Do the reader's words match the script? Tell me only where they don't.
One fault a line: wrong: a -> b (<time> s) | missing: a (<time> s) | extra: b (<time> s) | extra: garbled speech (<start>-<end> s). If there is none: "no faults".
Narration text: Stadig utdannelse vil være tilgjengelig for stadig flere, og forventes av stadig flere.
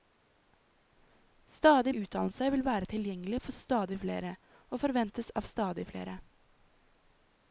no faults